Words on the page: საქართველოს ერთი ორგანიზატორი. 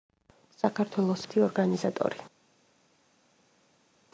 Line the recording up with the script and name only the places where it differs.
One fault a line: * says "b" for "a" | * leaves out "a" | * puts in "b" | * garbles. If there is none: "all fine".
all fine